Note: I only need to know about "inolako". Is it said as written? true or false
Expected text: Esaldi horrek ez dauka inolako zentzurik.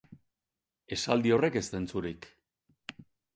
false